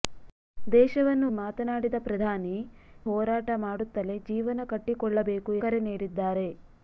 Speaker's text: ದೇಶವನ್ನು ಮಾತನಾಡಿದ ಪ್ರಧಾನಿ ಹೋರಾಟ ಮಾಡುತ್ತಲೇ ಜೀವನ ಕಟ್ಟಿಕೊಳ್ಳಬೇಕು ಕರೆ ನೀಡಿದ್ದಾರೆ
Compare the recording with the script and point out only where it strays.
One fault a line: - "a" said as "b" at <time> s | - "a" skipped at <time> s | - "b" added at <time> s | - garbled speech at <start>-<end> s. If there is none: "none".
none